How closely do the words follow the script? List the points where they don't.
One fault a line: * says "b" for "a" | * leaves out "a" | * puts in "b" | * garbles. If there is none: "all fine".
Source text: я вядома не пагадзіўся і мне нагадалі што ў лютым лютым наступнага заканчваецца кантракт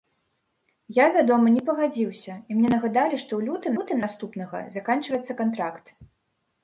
all fine